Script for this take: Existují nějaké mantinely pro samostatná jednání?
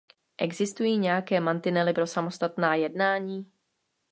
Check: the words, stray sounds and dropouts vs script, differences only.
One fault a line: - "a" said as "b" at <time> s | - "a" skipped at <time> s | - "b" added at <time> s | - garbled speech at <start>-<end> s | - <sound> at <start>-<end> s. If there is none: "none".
none